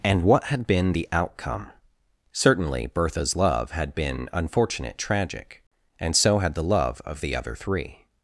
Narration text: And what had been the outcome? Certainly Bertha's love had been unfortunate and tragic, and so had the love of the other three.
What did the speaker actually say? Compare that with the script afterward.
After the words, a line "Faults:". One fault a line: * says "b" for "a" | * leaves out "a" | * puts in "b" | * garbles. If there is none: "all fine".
And what had been the outcome? Certainly Bertha's love had been unfortunate tragic, and so had the love of the other three.
Faults:
* leaves out "and"